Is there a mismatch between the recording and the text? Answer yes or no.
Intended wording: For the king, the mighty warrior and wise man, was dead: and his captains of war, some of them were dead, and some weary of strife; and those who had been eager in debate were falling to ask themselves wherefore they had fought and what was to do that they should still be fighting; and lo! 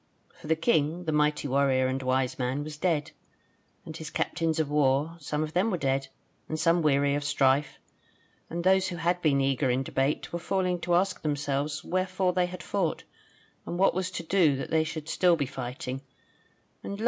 no